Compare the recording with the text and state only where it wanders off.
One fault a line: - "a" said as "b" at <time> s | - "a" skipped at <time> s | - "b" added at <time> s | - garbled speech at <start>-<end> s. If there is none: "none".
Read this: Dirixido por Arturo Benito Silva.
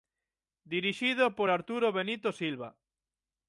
none